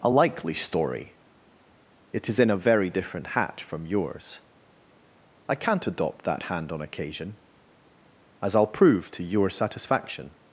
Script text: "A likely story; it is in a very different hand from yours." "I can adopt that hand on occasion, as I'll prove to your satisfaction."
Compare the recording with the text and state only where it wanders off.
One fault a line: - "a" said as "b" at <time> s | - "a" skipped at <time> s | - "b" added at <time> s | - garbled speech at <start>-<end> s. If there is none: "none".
- "hand" said as "hat" at 3.3 s
- "can" said as "can't" at 5.5 s